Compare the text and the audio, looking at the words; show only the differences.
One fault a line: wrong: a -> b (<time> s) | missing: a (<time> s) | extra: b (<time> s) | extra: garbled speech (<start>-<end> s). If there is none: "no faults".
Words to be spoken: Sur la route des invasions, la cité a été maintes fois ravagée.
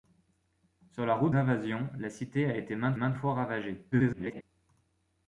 missing: des (1.3 s)
extra: maintes (2.9 s)
extra: garbled speech (3.9-4.4 s)